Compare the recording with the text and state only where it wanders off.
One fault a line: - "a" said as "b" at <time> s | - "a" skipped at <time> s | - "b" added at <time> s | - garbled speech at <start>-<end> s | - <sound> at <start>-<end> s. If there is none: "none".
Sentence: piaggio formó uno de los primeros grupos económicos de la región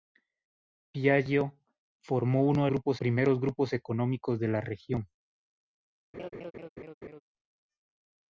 - "los" said as "grupos" at 2.7 s
- laugh at 6.1-7.2 s